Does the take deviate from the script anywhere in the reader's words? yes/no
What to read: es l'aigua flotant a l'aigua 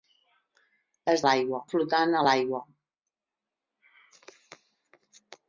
no